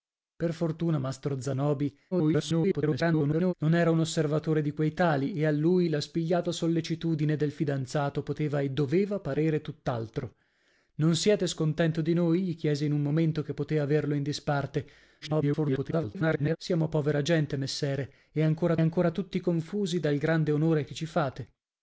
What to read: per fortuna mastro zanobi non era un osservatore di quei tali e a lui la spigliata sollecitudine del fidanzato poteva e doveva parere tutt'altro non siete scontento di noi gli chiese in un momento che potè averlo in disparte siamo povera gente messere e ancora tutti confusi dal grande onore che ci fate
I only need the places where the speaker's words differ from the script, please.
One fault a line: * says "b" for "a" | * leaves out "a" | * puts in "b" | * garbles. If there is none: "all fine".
* garbles
* garbles
* puts in "ancora"